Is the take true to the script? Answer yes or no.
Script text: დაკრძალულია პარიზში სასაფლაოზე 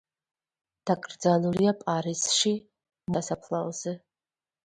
yes